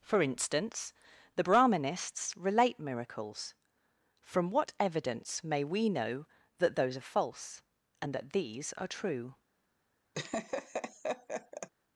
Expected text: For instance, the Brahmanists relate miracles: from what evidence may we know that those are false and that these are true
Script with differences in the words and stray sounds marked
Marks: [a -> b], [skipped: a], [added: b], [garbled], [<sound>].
For instance, the Brahmanists relate miracles: from what evidence may we know that those are false and that these are true [laugh]